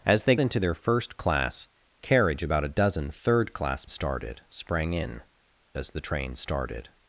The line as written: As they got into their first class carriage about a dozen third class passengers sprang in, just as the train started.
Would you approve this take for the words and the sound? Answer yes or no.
no